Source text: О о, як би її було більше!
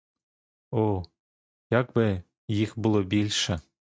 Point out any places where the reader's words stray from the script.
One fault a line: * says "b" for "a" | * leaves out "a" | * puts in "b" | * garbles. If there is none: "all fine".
* leaves out "о"
* says "їх" for "її"